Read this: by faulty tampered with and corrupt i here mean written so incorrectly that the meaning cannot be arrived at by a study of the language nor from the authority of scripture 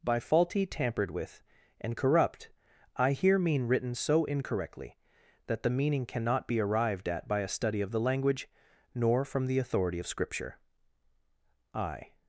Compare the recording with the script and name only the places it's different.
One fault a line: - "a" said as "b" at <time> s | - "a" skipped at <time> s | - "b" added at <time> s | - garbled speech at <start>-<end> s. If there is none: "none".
- "i" added at 11.7 s